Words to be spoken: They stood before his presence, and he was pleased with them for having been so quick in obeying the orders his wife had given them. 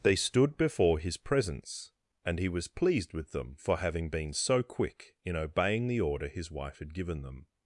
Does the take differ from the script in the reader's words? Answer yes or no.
yes